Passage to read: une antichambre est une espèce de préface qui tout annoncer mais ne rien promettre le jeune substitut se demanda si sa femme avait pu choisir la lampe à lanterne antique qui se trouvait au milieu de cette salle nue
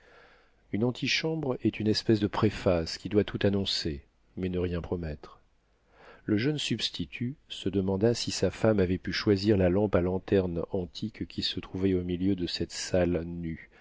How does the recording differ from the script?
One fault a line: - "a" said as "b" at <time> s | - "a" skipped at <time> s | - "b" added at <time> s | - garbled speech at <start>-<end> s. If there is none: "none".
- "doit" added at 3.1 s